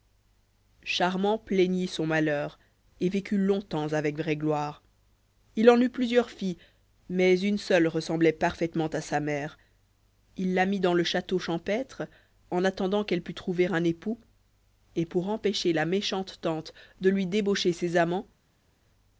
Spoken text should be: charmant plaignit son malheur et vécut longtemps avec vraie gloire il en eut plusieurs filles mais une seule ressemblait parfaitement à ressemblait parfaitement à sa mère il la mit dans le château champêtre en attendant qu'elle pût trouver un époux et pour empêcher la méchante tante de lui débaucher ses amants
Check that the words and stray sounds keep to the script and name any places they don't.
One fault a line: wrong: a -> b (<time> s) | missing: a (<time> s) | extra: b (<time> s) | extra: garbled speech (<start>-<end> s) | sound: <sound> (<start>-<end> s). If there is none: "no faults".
missing: ressemblait parfaitement à (9.0 s)